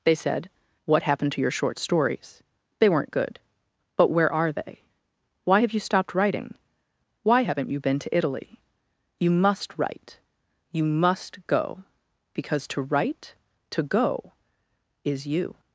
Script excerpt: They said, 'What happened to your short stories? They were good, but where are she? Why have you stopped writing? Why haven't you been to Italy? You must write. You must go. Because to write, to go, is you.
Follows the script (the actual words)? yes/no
no